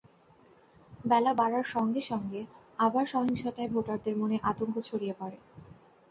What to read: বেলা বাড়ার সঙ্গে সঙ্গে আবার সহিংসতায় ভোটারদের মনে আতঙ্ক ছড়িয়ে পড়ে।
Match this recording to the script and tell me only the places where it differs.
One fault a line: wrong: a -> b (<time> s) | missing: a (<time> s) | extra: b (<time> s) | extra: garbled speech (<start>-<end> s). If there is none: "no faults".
no faults